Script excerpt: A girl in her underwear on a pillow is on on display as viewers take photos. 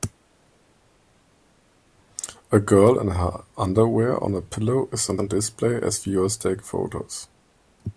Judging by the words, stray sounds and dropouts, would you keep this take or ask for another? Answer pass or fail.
pass